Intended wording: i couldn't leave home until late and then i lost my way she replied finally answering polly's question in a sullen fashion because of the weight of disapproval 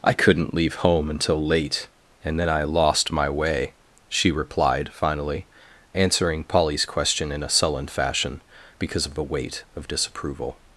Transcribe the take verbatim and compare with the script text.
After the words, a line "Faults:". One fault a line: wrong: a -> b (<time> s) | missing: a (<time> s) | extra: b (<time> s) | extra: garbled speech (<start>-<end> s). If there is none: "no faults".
i couldn't leave home until late and then i lost my way she replied finally answering polly's question in a sullen fashion because of the weight of disapproval
Faults:
no faults